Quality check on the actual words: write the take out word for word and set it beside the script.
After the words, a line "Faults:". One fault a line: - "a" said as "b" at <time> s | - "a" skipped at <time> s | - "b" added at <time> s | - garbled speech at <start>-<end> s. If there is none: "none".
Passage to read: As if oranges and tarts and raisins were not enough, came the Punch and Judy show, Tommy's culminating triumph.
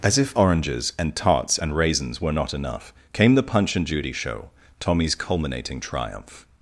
As if oranges and tarts and raisins were not enough, came the Punch and Judy show, Tommy's culminating triumph.
Faults:
none